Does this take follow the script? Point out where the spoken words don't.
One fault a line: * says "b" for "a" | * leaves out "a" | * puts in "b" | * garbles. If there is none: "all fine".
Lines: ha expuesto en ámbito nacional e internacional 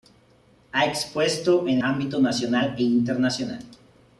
all fine